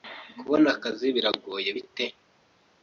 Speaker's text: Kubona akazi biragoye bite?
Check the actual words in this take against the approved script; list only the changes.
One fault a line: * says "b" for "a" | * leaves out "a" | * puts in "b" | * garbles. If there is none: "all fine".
all fine